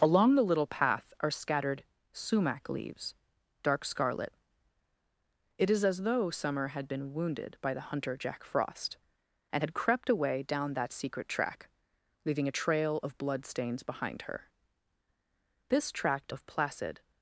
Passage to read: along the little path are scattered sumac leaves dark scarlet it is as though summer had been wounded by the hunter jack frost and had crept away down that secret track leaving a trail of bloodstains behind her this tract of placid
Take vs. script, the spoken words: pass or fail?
pass